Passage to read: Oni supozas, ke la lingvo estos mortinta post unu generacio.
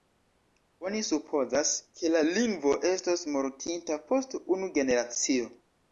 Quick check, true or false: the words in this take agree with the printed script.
true